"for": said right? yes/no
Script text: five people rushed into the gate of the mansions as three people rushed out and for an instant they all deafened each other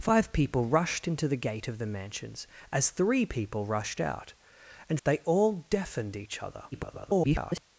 no